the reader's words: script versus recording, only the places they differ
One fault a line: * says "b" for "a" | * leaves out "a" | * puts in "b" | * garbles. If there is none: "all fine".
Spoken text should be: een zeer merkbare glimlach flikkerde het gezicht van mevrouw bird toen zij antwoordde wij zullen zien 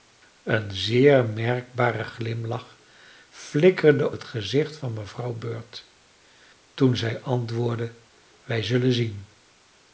all fine